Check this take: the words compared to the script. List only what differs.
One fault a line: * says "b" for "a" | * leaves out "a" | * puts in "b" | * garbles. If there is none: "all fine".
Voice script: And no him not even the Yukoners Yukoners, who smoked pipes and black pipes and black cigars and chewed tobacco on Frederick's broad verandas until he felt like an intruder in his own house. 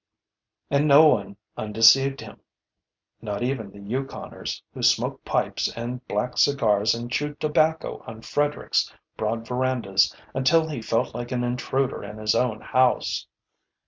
* puts in "one undeceived"
* leaves out "Yukoners"
* leaves out "pipes and black"